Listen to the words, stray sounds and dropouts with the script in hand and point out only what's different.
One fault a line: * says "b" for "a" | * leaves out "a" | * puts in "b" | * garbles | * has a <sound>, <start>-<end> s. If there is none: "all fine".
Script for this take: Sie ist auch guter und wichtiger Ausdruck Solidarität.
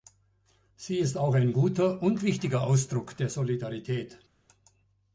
* puts in "ein"
* puts in "der"